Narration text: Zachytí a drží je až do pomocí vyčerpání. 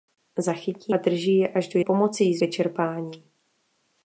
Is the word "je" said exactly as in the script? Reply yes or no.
yes